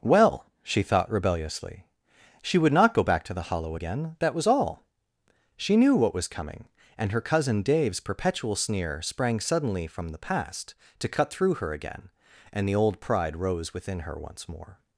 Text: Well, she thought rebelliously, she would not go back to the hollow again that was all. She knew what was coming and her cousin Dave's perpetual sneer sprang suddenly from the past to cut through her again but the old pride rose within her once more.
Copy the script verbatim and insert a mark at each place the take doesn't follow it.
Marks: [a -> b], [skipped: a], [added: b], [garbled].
Well, she thought rebelliously, she would not go back to the hollow again that was all. She knew what was coming and her cousin Dave's perpetual sneer sprang suddenly from the past to cut through her again [but -> and] the old pride rose within her once more.